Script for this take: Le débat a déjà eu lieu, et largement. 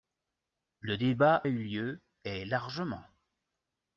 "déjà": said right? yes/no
no